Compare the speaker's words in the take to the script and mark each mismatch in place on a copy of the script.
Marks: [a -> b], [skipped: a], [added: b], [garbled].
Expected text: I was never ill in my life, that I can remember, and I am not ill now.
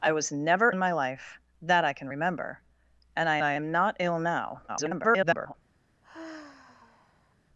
I was never [skipped: ill] in my life, that I can remember, and I [added: I] am not ill now. [garbled]